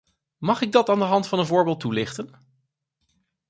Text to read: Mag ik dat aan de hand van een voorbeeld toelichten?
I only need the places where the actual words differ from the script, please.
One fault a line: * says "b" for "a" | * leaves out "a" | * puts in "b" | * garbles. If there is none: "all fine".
all fine